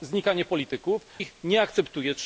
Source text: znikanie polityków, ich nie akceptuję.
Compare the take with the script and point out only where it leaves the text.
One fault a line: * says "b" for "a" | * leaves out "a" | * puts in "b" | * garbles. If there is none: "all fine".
all fine